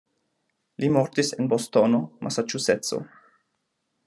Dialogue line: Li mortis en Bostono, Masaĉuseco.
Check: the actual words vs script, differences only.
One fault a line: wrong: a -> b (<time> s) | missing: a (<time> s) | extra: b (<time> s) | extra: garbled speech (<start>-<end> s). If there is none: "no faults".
no faults